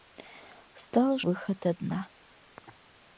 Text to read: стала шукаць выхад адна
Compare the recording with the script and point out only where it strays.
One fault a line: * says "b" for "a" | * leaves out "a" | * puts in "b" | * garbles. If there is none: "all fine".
* leaves out "шукаць"